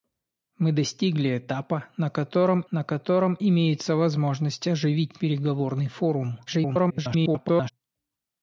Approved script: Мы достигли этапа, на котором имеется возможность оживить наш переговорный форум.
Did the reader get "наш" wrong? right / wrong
wrong